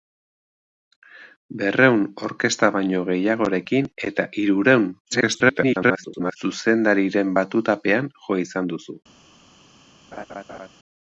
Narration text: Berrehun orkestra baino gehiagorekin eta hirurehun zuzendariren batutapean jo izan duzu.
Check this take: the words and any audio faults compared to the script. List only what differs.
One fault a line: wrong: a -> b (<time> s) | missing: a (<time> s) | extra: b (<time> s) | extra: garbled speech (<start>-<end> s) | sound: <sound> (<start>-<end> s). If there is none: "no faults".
extra: garbled speech (5.1-6.4 s)
sound: laugh (10.1-10.7 s)